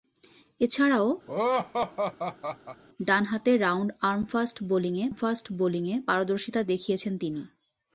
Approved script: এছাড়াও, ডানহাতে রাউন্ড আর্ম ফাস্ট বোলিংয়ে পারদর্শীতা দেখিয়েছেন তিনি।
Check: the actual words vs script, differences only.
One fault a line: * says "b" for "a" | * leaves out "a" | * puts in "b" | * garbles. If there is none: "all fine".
* puts in "ফাস্ট বোলিংয়ে"